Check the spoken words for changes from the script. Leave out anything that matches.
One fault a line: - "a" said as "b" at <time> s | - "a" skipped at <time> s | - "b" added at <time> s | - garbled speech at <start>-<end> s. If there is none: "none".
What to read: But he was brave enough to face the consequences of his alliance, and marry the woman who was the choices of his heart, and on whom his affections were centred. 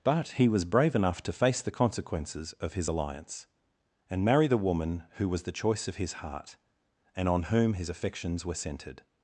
- "choices" said as "choice" at 5.5 s